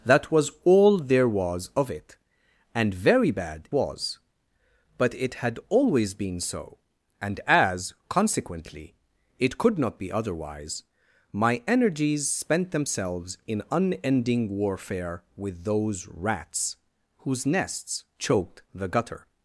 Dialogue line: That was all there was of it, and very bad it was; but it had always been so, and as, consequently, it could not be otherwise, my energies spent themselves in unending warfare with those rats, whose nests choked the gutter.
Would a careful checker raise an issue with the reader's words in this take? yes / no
yes